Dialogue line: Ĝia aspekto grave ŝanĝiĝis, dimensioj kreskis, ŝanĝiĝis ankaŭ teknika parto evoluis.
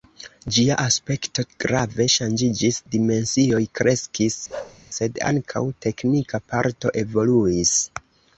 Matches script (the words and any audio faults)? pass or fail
fail